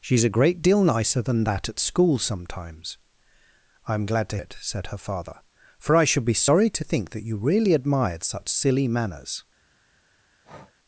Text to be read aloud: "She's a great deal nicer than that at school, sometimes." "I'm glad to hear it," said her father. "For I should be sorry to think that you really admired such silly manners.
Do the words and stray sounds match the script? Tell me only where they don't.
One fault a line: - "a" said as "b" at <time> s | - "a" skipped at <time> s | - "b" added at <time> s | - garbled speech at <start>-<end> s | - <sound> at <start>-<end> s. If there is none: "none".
- "hear" skipped at 4.4 s
- breath at 10.4-10.7 s